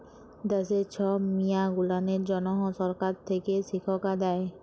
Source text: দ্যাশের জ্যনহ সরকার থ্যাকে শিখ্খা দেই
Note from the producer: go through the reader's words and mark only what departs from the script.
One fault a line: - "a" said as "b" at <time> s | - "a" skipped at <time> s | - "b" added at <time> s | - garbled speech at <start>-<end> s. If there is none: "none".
- "ছব মিয়াঁ গুলানের" added at 0.9 s